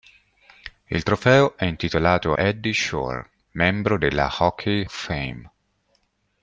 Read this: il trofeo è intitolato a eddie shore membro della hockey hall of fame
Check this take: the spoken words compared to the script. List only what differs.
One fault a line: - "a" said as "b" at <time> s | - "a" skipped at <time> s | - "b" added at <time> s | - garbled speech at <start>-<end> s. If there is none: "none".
- "a" skipped at 2.3 s
- "hall" skipped at 4.8 s